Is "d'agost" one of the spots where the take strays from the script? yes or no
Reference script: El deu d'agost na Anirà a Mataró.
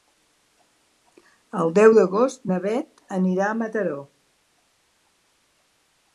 no